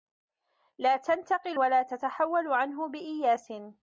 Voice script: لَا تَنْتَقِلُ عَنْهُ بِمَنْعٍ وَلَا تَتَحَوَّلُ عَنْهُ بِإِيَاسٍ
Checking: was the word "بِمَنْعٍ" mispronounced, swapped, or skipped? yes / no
yes